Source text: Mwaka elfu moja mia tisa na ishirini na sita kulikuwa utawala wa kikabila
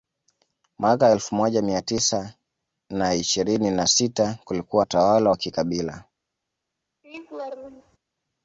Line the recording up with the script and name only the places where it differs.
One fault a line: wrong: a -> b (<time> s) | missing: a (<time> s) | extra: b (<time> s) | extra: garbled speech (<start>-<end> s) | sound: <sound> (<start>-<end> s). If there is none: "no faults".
sound: laugh (7.0-8.0 s)